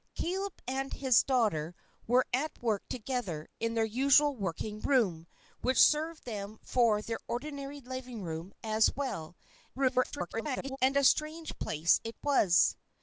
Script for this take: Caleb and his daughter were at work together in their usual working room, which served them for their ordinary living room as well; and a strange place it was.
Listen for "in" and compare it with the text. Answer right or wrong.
right